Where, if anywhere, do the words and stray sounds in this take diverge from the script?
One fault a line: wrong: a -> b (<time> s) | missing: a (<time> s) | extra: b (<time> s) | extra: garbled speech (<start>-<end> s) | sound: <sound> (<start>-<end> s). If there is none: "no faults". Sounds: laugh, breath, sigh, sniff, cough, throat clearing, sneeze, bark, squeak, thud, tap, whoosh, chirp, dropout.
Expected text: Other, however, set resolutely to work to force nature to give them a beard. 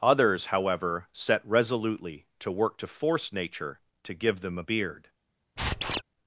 wrong: Other -> Others (0.0 s)
sound: squeak (5.6-6.0 s)